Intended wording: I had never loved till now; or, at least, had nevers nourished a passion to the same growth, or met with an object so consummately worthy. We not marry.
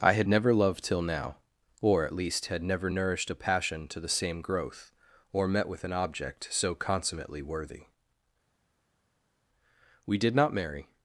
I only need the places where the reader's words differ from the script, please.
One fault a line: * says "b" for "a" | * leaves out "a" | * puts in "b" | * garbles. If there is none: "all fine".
* says "never" for "nevers"
* puts in "did"